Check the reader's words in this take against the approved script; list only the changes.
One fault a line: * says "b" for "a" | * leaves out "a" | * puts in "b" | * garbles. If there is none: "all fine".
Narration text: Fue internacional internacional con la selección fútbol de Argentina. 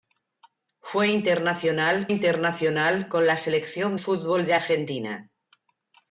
all fine